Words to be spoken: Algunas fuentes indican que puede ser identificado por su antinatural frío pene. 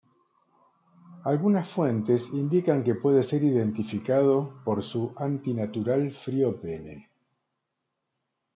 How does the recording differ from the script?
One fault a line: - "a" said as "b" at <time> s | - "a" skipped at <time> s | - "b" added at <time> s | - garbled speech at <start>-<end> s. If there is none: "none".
none